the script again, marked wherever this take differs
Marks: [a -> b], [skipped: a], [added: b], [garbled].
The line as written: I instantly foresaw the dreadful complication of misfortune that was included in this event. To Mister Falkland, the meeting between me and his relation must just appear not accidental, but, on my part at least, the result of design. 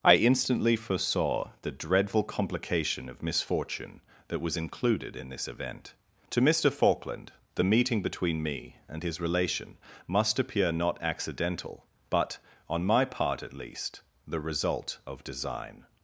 I instantly foresaw the dreadful complication of misfortune that was included in this event. To Mister Falkland, the meeting between me and his relation must [skipped: just] appear not accidental, but, on my part at least, the result of design.